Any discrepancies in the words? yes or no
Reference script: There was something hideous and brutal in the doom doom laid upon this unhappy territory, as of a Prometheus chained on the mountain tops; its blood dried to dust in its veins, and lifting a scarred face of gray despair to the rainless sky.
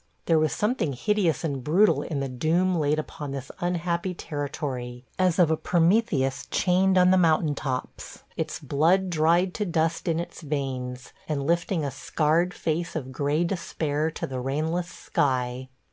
yes